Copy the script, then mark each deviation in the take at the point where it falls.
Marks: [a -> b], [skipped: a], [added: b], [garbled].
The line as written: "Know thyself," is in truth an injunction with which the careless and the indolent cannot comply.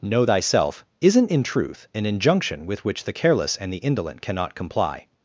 "Know thyself," [is -> isn't] in truth an injunction with which the careless and the indolent cannot comply.